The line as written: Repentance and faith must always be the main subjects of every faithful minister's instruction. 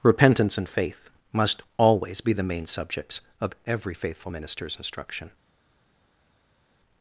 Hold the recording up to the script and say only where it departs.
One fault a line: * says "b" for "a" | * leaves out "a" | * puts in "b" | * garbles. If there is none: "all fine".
all fine